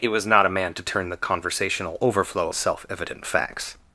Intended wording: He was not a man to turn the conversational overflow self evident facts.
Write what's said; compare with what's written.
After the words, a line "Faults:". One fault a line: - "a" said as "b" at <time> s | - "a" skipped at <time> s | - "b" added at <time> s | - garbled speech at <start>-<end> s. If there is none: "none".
He was not a man to turn the conversational overflow self evident facts.
Faults:
none